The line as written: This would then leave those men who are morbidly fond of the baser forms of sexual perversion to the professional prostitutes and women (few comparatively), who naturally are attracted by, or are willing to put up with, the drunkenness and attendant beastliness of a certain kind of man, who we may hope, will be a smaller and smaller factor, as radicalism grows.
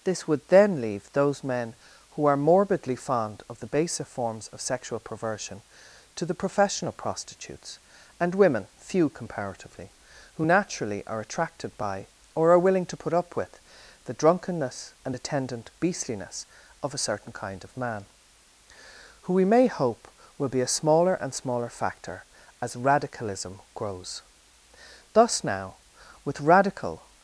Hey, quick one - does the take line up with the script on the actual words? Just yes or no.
no